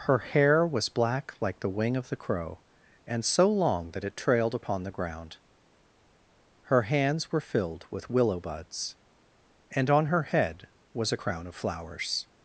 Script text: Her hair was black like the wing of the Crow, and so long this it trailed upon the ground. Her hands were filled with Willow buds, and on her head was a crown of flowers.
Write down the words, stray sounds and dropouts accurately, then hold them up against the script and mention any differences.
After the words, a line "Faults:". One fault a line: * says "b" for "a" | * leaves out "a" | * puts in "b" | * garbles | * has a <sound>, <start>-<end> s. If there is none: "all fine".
Her hair was black like the wing of the Crow, and so long that it trailed upon the ground. Her hands were filled with Willow buds, and on her head was a crown of flowers.
Faults:
* says "that" for "this"